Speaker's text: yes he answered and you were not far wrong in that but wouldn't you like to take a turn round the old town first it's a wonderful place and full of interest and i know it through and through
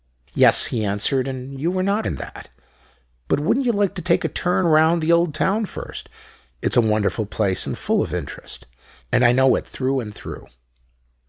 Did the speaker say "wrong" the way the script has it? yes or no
no